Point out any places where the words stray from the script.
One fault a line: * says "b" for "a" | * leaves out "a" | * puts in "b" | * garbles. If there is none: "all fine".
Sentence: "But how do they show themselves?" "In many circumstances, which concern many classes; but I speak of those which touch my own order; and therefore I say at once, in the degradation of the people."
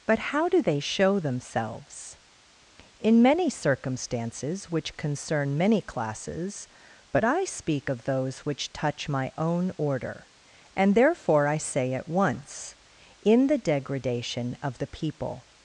all fine